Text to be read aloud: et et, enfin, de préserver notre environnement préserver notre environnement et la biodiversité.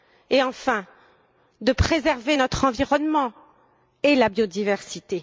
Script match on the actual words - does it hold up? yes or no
no